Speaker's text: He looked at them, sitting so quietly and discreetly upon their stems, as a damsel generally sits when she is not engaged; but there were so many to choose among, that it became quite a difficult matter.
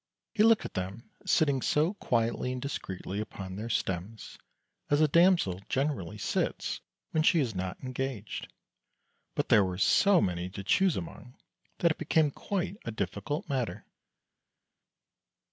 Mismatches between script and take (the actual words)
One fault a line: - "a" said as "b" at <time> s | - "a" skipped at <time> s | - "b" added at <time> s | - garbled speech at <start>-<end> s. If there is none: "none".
none